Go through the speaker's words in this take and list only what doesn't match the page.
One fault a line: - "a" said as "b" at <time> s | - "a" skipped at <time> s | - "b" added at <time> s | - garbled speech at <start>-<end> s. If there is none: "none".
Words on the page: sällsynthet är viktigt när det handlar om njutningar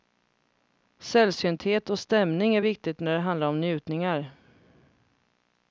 - "och stämning" added at 1.9 s